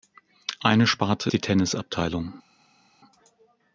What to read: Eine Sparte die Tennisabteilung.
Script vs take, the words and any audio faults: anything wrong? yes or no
no